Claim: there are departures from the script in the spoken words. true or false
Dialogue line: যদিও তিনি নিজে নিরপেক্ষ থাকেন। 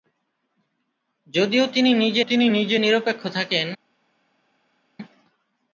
true